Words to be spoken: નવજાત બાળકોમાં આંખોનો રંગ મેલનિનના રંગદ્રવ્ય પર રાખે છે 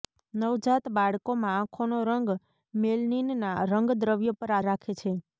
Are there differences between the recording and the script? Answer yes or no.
no